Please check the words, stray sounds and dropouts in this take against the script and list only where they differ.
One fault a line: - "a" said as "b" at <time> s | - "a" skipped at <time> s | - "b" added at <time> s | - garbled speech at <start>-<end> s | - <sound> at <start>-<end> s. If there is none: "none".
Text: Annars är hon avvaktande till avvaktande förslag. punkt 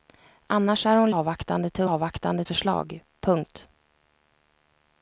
none